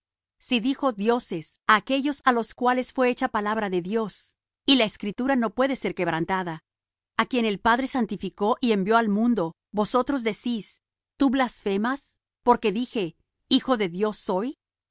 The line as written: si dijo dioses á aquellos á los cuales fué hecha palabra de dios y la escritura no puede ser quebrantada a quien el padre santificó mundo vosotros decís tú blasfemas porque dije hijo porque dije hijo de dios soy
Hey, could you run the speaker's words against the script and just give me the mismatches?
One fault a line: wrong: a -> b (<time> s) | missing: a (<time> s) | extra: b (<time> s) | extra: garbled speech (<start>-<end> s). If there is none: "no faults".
extra: y envió al (8.6 s)
missing: porque dije hijo (13.8 s)